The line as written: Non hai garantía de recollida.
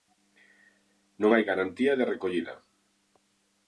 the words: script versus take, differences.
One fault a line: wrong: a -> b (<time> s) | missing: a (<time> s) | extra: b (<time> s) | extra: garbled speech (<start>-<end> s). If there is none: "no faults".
no faults